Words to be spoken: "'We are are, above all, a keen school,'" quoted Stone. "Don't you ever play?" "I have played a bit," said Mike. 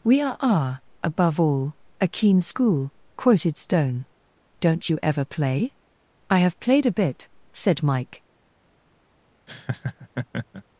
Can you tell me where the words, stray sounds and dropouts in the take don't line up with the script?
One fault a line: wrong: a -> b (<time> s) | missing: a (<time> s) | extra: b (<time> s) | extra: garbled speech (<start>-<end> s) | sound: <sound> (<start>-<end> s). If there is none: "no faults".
sound: laugh (9.5-10.6 s)